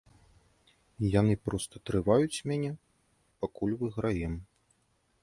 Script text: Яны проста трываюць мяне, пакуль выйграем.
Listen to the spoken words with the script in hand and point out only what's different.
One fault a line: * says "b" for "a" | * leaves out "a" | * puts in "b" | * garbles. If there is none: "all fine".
all fine